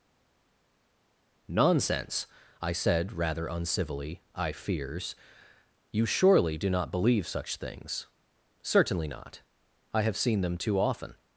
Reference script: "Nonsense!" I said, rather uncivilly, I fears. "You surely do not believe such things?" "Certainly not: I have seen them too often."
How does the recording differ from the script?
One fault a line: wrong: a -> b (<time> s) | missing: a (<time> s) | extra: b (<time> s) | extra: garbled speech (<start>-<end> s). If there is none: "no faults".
no faults